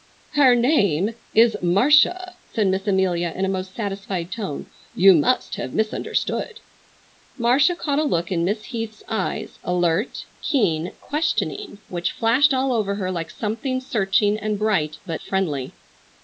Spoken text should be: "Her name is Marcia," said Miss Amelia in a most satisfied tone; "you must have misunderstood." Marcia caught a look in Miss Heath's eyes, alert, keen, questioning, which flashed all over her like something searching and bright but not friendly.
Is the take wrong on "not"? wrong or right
wrong